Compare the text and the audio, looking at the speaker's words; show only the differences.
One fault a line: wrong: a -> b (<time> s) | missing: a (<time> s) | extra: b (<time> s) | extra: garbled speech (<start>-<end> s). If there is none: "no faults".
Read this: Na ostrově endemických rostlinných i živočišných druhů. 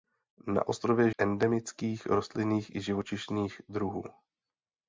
no faults